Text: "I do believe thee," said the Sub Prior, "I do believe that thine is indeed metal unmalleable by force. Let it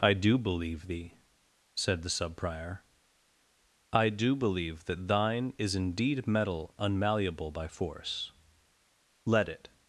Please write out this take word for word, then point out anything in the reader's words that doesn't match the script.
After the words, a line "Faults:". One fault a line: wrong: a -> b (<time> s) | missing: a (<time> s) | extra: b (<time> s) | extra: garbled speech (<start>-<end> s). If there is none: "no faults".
"I do believe thee," said the Sub Prior, "I do believe that thine is indeed metal unmalleable by force. Let it
Faults:
no faults